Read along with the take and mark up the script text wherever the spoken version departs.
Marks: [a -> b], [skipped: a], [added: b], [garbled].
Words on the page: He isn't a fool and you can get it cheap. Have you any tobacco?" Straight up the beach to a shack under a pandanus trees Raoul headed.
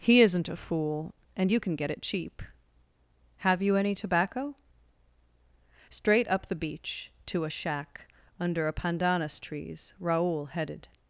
He isn't a fool and you can get it cheap. Have you any tobacco?" Straight up the beach to a shack under a pandanus trees Raoul headed.